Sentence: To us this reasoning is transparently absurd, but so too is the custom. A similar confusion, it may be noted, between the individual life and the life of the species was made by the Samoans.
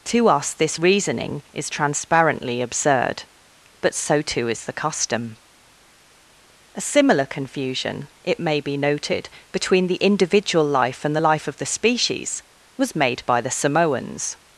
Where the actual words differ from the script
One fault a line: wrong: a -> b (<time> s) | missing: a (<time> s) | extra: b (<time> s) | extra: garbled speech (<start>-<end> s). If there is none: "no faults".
no faults